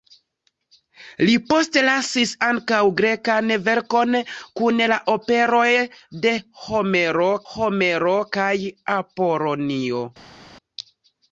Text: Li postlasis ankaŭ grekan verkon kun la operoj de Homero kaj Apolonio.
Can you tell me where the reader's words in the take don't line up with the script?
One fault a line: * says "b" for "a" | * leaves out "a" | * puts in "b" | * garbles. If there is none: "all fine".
* puts in "Homero"